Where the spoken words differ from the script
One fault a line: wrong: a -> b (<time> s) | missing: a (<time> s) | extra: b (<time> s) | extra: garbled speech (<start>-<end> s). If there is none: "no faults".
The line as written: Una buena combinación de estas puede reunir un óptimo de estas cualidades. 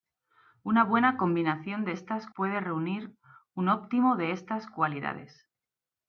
no faults